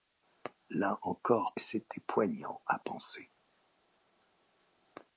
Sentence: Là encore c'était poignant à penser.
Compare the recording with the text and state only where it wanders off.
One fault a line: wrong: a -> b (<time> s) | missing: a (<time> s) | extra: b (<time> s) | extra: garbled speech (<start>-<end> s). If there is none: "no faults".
no faults